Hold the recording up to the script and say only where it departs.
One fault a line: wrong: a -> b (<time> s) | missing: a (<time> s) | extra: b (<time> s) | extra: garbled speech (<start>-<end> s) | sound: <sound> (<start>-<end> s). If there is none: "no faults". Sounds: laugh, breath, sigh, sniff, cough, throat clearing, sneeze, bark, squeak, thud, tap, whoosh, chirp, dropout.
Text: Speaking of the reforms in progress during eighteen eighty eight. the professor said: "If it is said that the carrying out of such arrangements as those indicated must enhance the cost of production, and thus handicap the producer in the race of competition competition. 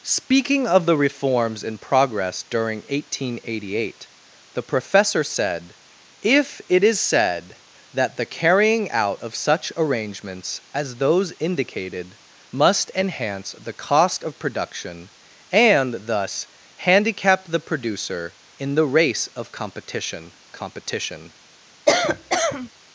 sound: cough (21.9-22.7 s)